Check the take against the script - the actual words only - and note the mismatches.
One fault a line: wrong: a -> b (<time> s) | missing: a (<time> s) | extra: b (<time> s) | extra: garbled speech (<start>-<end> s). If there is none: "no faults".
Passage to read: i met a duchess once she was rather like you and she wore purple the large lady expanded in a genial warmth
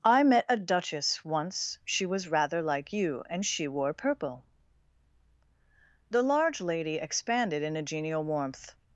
no faults